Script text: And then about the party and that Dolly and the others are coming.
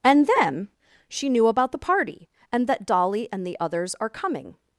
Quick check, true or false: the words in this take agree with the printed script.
false